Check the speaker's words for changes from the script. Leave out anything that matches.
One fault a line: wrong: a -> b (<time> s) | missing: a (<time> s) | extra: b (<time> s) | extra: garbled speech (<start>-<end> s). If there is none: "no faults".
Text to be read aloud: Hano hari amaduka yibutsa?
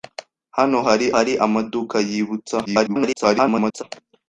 extra: hari (1.1 s)
extra: garbled speech (2.7-3.8 s)